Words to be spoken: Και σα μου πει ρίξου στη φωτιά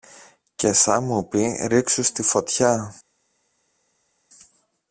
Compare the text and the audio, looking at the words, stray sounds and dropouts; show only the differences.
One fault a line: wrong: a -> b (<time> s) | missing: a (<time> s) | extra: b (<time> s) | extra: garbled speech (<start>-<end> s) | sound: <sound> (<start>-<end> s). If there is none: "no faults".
no faults